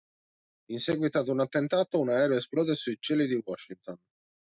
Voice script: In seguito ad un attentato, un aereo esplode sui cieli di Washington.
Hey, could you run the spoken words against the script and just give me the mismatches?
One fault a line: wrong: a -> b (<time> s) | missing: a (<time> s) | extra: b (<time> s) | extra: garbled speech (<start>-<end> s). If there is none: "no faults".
no faults